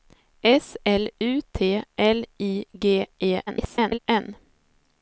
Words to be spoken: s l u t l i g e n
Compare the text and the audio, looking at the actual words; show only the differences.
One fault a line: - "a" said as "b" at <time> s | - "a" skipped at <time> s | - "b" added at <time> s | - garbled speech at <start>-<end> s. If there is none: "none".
- garbled speech at 3.5-4.0 s